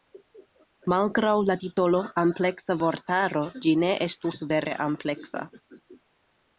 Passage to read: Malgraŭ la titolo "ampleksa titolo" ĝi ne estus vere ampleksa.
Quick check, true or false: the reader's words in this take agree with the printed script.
false